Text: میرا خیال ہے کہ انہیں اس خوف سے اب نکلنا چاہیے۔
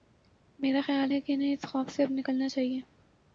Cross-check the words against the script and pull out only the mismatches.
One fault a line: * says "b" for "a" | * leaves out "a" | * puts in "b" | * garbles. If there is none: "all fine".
all fine